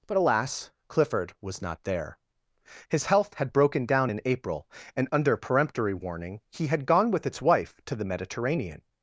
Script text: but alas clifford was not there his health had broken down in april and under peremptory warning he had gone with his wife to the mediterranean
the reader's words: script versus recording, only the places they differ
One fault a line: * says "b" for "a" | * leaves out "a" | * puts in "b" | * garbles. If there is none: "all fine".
* says "its" for "his"